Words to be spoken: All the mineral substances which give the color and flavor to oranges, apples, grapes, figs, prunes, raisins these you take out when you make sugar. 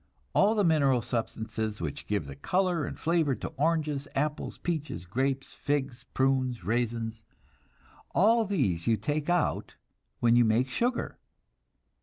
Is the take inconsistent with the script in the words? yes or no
yes